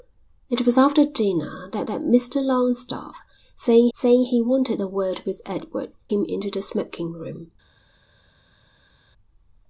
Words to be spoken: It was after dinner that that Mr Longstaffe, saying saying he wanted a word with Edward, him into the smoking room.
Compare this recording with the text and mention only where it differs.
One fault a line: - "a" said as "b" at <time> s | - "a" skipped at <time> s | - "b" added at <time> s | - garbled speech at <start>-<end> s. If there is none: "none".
none